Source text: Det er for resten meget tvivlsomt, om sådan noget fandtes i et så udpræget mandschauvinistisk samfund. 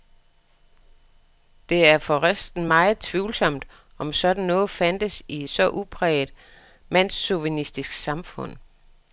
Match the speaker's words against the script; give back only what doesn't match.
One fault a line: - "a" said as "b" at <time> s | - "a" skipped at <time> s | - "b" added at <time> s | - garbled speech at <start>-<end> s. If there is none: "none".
none